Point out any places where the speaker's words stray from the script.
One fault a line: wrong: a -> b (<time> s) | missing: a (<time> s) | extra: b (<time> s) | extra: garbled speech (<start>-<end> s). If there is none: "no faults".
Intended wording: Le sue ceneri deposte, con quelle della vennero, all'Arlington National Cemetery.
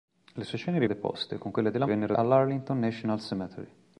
no faults